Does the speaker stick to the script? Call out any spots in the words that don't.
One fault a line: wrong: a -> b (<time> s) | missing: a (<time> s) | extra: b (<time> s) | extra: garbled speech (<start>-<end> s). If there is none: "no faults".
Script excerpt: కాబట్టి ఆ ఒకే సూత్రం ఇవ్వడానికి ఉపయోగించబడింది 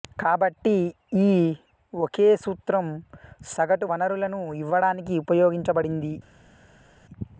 wrong: ఆ -> ఈ (1.2 s)
extra: సగటు వనరులను (3.5 s)